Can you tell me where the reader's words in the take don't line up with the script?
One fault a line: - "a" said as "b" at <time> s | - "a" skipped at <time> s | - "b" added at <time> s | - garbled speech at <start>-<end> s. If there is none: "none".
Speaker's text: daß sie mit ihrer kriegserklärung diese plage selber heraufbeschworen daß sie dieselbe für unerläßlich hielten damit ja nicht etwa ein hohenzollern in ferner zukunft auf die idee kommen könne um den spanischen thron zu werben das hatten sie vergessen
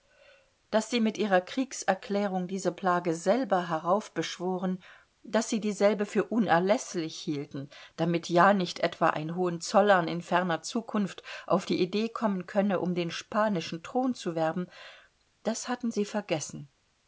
none